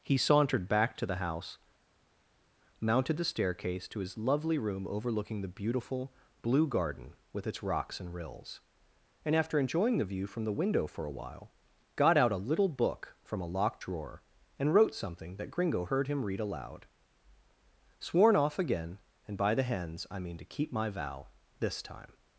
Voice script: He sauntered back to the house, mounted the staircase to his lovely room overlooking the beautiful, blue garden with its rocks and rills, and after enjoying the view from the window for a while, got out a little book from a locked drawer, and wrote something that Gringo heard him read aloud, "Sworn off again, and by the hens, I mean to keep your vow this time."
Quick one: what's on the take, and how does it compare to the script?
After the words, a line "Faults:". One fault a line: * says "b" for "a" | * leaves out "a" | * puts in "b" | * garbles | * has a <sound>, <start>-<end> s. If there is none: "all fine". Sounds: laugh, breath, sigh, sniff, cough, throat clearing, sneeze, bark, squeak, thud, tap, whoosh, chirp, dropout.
He sauntered back to the house, mounted the staircase to his lovely room overlooking the beautiful, blue garden with its rocks and rills, and after enjoying the view from the window for a while, got out a little book from a locked drawer, and wrote something that Gringo heard him read aloud, "Sworn off again, and by the hens, I mean to keep my vow this time."
Faults:
* says "my" for "your"